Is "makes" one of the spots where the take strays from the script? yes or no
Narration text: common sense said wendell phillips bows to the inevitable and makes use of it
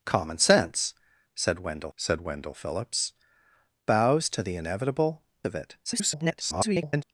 yes